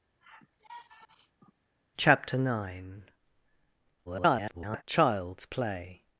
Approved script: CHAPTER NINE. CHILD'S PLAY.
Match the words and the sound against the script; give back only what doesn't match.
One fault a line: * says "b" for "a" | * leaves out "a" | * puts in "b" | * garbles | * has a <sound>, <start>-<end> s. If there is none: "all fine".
* has a sigh, 0.2-1.5 s
* garbles